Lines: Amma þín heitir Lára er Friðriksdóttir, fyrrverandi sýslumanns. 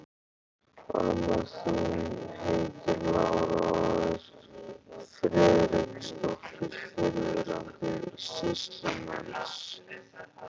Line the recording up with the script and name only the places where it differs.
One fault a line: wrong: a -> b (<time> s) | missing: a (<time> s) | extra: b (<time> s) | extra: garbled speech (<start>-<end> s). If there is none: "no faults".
extra: og (3.7 s)